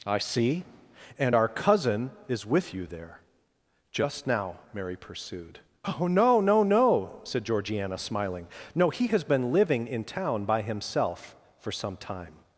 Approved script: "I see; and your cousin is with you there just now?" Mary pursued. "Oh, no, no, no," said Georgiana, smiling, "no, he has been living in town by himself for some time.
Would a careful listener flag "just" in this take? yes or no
no